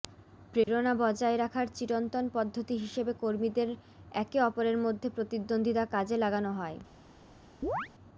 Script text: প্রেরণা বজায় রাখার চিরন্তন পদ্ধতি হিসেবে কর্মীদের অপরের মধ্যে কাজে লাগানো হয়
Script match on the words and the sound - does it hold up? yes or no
no